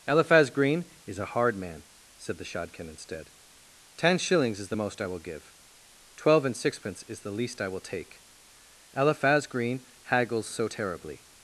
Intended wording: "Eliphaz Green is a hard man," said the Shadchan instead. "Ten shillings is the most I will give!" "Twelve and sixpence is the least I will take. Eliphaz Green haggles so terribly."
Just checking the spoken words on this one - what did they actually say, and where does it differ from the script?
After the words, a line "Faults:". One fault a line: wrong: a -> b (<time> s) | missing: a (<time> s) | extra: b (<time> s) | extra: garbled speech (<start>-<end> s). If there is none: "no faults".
"Eliphaz Green is a hard man," said the Shadchan instead. "Ten shillings is the most I will give!" "Twelve and sixpence is the least I will take. Eliphaz Green haggles so terribly."
Faults:
no faults